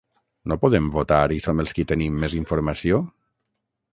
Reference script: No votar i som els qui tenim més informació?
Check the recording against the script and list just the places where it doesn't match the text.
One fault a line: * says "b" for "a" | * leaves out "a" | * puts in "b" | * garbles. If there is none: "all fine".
* puts in "podem"